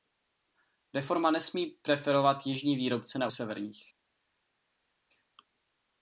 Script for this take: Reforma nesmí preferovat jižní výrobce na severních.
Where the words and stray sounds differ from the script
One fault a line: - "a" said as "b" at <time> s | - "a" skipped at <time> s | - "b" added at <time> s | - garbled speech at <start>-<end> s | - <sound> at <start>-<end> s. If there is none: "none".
none